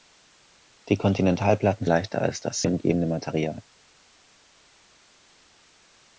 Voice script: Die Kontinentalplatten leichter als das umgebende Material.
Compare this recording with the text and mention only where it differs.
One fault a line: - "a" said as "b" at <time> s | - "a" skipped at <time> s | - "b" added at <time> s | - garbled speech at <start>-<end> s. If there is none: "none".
none